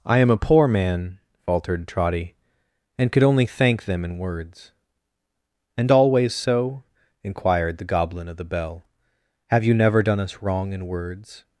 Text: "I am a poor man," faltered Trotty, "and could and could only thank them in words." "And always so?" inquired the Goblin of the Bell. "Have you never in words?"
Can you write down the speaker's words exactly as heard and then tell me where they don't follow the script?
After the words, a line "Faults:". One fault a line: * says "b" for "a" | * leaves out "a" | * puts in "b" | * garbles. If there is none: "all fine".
"I am a poor man," faltered Trotty, "and could only thank them in words." "And always so?" inquired the Goblin of the Bell. "Have you never done us wrong in words?"
Faults:
* leaves out "and could"
* puts in "done us wrong"